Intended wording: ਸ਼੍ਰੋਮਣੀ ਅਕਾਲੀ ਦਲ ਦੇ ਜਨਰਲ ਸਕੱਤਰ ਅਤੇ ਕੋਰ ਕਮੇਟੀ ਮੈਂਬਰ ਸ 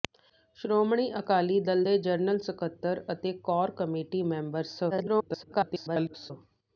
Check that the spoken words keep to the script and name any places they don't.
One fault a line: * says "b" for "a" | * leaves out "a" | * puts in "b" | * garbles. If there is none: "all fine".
* garbles